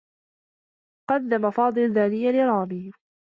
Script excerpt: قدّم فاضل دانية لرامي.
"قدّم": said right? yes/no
yes